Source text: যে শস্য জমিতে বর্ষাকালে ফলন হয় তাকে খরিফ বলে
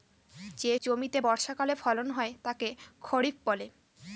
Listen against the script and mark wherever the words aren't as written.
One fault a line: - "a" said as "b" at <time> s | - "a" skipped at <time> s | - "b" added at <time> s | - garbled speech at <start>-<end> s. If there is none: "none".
- "শস্য" skipped at 0.7 s